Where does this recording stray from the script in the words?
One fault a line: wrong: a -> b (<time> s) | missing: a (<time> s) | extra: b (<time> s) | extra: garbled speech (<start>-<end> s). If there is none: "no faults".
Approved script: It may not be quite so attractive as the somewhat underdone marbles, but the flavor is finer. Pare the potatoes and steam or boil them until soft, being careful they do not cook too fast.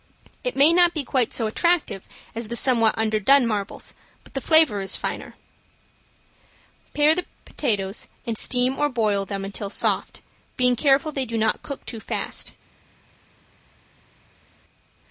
no faults